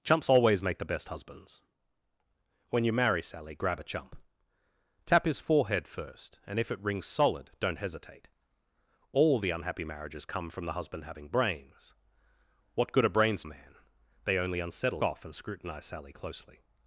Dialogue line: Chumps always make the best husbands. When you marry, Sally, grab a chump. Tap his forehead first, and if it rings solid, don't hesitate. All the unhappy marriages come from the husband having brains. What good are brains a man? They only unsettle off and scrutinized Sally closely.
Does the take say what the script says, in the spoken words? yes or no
yes